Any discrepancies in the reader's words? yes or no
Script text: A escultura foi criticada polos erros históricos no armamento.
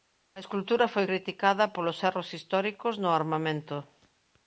no